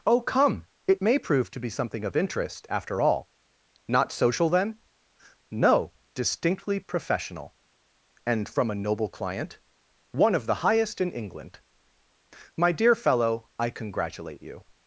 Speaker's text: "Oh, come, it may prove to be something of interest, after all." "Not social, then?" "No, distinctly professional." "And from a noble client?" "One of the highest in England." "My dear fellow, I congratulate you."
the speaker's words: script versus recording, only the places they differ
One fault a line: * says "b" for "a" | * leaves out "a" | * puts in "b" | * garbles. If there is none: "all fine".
all fine